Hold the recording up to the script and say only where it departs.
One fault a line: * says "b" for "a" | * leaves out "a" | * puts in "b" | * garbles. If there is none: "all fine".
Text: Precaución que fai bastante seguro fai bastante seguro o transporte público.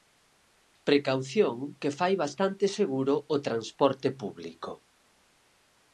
* leaves out "fai bastante seguro"